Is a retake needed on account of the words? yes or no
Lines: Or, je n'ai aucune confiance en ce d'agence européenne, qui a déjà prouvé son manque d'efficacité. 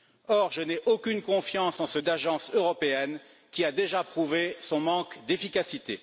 no